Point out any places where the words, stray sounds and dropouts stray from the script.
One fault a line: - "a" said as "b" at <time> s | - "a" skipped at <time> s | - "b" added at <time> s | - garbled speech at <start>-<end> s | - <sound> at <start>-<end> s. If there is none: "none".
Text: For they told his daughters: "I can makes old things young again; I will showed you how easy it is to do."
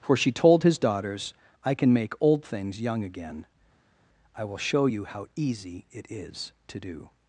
- "they" said as "she" at 0.2 s
- "makes" said as "make" at 1.9 s
- "showed" said as "show" at 4.6 s